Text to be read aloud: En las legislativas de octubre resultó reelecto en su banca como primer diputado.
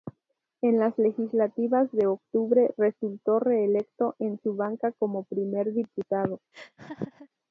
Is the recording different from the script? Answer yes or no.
no